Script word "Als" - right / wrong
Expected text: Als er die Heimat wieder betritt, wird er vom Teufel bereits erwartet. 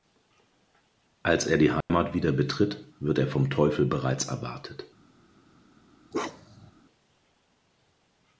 right